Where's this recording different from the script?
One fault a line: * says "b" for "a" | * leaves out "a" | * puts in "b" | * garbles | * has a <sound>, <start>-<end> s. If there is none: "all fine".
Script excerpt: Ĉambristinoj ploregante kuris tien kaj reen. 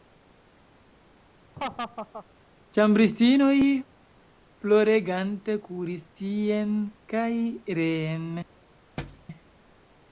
* has a laugh, 1.6-2.3 s
* has a thud, 9.0-9.3 s